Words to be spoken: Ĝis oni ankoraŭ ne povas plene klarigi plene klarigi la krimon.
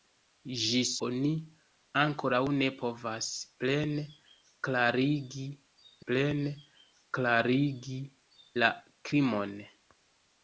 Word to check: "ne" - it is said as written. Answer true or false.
true